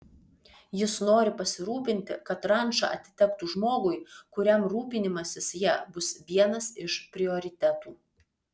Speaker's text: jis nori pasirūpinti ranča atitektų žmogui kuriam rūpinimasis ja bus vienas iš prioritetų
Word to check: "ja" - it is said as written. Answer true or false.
true